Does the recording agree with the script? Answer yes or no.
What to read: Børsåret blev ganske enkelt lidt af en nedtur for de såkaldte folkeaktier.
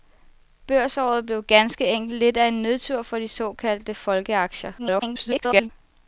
no